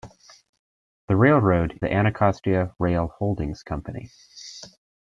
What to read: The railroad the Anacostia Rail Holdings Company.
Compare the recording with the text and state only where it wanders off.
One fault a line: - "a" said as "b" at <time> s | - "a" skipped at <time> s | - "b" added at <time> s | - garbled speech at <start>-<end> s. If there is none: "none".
none